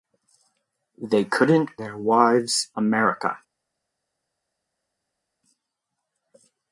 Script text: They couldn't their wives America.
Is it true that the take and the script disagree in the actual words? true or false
false